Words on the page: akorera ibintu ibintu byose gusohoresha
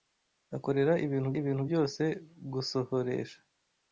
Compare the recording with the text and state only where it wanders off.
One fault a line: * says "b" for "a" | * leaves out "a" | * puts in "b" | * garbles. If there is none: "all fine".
all fine